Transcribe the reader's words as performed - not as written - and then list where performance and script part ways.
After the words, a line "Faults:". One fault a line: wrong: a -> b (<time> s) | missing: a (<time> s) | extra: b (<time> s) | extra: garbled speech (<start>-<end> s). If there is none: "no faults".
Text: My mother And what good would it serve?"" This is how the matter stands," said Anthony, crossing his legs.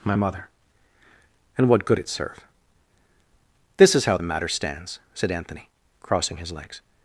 My mother And what good it serve?"" This is how the matter stands," said Anthony, crossing his legs.
Faults:
missing: would (2.0 s)